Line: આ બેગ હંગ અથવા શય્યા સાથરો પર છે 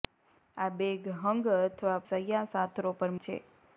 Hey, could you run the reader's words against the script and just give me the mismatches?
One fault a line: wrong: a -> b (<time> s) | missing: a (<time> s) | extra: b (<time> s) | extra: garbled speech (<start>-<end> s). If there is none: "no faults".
no faults